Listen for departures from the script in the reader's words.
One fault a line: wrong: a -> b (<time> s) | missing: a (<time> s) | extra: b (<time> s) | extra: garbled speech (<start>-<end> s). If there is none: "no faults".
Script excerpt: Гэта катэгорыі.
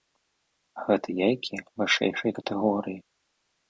extra: яйкі вышэйшай (1.3 s)